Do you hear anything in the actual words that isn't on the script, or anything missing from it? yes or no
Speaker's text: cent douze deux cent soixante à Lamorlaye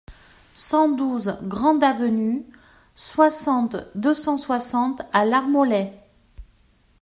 yes